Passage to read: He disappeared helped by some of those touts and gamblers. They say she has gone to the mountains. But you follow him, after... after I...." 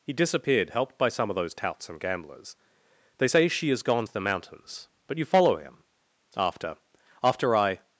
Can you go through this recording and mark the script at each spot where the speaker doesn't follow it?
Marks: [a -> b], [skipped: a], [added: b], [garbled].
He disappeared helped by some of those touts and gamblers. They say she has gone to the mountains. But you follow him, after... after I...."